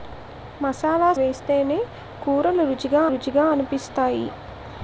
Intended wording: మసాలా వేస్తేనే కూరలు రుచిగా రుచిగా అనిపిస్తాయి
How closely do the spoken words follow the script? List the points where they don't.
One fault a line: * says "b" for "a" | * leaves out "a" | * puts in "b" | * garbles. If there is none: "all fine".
all fine